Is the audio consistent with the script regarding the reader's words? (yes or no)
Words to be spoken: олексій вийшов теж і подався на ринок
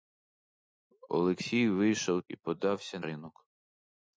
no